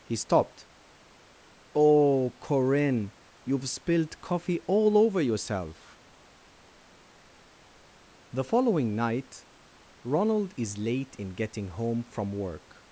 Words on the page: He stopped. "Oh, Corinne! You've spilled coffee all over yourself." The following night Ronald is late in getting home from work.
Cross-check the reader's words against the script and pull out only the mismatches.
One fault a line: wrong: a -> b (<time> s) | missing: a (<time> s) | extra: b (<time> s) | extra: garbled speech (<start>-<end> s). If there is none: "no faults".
no faults